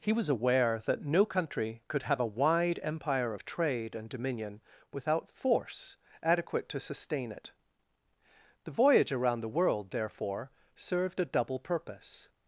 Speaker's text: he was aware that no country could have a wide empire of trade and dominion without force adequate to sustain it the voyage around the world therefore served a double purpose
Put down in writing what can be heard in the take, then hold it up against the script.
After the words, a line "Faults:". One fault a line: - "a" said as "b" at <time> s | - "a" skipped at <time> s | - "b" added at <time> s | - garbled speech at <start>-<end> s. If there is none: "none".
he was aware that no country could have a wide empire of trade and dominion without force adequate to sustain it the voyage around the world therefore served a double purpose
Faults:
none